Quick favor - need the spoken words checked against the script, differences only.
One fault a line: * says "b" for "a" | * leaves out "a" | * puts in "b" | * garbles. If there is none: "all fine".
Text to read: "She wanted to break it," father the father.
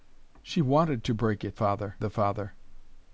all fine